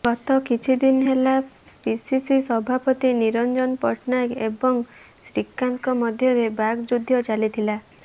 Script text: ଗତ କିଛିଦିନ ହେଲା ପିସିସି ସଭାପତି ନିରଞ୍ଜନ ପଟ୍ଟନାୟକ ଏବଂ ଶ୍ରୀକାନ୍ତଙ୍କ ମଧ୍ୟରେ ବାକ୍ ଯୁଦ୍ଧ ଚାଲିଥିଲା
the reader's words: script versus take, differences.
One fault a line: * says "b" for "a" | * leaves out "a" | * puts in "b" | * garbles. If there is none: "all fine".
all fine